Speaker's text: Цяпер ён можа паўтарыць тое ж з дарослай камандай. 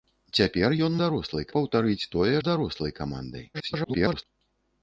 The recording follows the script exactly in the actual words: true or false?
false